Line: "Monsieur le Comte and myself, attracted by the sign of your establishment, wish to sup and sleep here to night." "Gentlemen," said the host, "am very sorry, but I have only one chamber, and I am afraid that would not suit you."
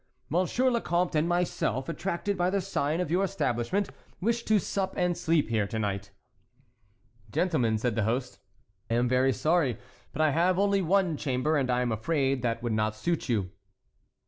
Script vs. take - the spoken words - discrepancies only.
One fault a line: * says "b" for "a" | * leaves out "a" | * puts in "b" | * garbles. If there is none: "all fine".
all fine